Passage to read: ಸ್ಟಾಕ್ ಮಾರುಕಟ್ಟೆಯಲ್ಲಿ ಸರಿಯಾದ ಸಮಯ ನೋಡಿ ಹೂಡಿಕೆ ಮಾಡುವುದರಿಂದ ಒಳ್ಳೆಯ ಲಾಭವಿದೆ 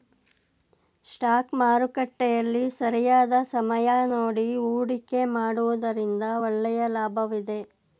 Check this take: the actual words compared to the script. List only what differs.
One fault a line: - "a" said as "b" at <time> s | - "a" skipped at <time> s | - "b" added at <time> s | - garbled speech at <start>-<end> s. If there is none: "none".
none